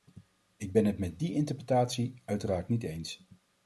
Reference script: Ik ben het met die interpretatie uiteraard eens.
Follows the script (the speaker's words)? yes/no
no